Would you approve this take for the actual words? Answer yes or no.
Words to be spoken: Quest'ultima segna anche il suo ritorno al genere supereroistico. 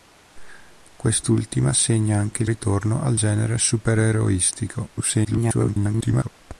no